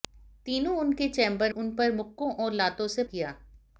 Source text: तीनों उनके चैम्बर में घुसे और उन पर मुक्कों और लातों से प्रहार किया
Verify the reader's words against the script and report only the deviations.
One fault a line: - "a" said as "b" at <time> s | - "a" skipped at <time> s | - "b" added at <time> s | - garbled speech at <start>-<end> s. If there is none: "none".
- "में घुसे और" skipped at 1.5 s
- "प्रहार" skipped at 3.0 s